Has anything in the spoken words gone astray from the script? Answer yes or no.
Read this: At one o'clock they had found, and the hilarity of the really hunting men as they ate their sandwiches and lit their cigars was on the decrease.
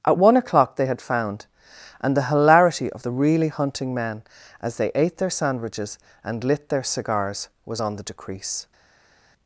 no